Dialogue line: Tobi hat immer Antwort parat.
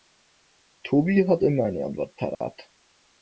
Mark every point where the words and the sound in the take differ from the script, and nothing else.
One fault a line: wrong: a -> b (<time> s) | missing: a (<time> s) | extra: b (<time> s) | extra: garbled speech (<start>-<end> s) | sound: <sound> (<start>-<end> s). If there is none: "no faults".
extra: eine (1.6 s)
sound: dropout (2.3-2.4 s)